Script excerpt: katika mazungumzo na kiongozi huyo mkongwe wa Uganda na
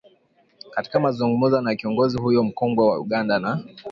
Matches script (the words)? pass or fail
pass